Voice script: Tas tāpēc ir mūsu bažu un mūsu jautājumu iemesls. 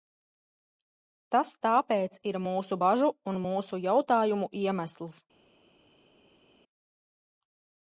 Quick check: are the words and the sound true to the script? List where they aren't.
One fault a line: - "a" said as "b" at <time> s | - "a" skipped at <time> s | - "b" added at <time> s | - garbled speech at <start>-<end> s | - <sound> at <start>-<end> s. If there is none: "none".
none